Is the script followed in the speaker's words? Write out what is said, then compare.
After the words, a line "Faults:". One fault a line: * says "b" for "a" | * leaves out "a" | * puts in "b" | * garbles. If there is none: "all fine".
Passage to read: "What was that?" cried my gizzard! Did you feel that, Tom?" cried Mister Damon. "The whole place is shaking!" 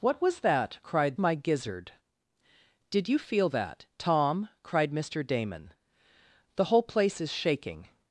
"What was that?" cried my gizzard! Did you feel that, Tom?" cried Mister Damon. "The whole place is shaking!"
Faults:
all fine